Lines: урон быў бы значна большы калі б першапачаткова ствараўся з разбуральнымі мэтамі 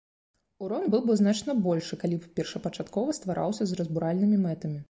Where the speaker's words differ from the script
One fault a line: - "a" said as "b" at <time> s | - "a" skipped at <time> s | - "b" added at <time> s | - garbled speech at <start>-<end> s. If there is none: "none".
none